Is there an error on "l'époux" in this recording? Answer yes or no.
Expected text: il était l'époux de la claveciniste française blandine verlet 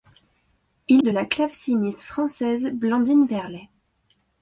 yes